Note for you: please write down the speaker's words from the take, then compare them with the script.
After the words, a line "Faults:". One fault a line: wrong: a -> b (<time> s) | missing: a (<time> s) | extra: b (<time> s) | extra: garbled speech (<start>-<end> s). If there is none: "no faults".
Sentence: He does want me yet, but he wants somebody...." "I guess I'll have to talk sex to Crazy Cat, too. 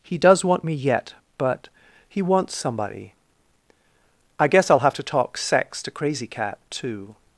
He does want me yet, but he wants somebody...." "I guess I'll have to talk sex to Crazy Cat, too.
Faults:
no faults